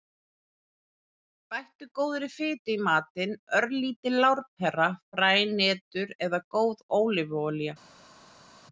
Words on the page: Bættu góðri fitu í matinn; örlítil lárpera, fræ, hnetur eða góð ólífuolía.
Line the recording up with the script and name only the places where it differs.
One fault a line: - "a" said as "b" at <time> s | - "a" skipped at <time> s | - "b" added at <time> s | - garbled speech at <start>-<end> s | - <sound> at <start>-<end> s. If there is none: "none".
none